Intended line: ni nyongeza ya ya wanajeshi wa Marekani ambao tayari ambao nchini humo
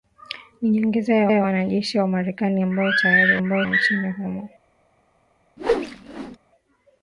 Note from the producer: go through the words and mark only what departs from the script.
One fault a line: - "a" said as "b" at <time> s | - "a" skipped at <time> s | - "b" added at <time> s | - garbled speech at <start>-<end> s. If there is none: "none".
none